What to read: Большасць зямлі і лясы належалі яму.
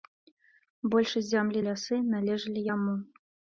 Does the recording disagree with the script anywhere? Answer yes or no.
no